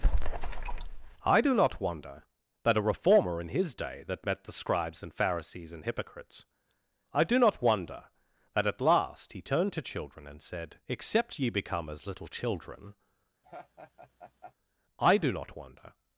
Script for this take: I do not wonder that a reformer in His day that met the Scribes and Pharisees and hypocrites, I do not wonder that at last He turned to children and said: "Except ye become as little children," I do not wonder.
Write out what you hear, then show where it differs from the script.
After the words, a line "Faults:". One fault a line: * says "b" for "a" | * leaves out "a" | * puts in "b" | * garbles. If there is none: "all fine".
I do not wonder that a reformer in His day that met the Scribes and Pharisees and hypocrites, I do not wonder that at last He turned to children and said: "Except ye become as little children," I do not wonder.
Faults:
all fine